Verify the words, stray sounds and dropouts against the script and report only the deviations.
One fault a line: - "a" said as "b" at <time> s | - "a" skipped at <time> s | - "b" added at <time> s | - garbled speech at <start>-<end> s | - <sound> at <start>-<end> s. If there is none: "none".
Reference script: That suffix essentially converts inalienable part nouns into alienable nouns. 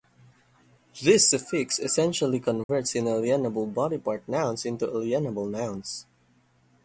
- "That" said as "This" at 1.0 s
- dropout at 2.6-2.7 s
- "body" added at 3.7 s